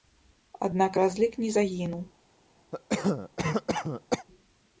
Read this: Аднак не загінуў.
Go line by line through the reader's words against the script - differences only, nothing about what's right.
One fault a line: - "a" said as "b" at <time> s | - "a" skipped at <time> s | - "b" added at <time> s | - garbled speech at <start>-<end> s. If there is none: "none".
- "разлік" added at 1.0 s